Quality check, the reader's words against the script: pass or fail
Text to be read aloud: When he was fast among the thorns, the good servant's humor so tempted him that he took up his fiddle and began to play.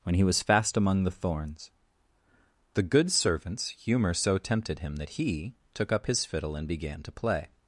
pass